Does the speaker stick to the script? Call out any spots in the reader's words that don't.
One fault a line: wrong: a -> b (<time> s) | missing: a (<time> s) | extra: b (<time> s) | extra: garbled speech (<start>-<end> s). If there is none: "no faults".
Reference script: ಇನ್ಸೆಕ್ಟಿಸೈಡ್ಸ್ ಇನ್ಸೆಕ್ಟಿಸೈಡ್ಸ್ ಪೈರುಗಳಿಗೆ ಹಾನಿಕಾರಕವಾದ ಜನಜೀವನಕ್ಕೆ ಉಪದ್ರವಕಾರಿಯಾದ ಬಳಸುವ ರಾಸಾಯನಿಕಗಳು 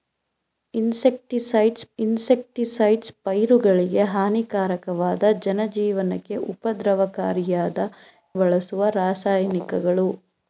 no faults